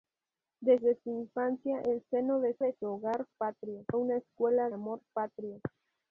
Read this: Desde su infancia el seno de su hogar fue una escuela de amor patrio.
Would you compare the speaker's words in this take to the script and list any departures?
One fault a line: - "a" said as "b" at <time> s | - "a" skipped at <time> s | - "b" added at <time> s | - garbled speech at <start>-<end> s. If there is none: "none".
- "de" added at 2.6 s
- "fue" said as "patrio" at 3.4 s
- "de" skipped at 4.7 s